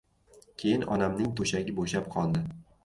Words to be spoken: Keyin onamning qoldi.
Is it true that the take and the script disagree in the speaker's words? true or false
true